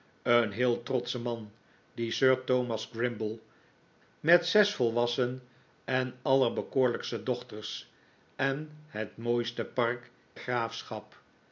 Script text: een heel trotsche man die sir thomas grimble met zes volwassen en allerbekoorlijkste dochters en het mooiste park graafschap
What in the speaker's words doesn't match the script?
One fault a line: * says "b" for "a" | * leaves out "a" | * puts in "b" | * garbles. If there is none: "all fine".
all fine